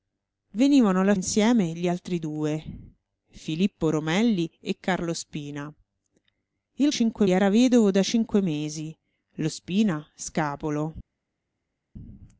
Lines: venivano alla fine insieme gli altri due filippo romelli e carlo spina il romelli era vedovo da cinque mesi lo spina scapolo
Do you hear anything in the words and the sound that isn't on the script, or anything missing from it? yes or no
yes